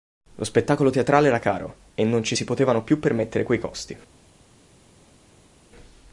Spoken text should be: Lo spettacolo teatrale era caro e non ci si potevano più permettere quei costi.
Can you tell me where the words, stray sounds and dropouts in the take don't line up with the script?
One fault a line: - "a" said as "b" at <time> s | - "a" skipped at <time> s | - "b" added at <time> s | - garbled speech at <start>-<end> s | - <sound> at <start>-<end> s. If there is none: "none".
none